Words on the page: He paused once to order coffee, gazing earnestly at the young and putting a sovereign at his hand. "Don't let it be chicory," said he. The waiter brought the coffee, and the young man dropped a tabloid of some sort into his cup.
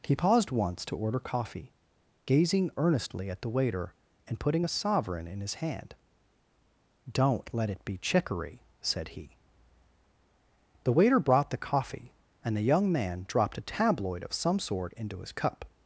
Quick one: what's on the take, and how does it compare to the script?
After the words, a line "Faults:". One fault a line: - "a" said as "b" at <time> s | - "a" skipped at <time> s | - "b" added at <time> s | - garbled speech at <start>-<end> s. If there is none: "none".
He paused once to order coffee, gazing earnestly at the waiter and putting a sovereign in his hand. "Don't let it be chicory," said he. The waiter brought the coffee, and the young man dropped a tabloid of some sort into his cup.
Faults:
- "young" said as "waiter" at 3.5 s
- "at" said as "in" at 5.3 s